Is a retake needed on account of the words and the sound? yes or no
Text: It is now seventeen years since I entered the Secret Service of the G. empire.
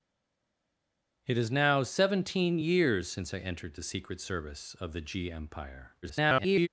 yes